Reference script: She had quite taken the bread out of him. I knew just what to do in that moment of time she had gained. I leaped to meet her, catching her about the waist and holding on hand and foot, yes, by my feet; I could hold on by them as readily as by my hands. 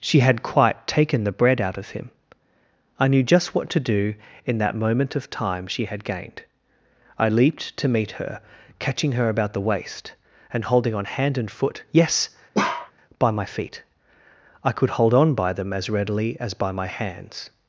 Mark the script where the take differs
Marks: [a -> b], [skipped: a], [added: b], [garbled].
She had quite taken the bread out of him. I knew just what to do in that moment of time she had gained. I leaped to meet her, catching her about the waist and holding on hand and foot, yes, by my feet; I could hold on by them as readily as by my hands.